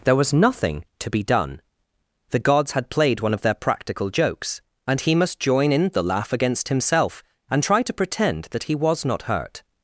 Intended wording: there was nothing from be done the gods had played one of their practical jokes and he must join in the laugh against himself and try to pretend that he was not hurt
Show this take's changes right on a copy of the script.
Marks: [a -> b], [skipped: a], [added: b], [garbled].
there was nothing [from -> to] be done the gods had played one of their practical jokes and he must join in the laugh against himself and try to pretend that he was not hurt